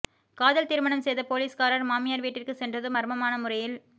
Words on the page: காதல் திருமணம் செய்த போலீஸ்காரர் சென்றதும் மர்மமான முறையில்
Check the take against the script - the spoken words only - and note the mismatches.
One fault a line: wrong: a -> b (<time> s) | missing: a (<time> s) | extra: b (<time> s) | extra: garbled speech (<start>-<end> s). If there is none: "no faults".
extra: மாமியார் வீட்டிற்கு (1.9 s)